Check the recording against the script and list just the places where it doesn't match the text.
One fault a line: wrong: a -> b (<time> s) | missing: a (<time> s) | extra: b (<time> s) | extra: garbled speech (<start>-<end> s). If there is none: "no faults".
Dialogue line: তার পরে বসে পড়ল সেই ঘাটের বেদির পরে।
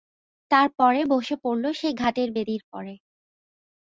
no faults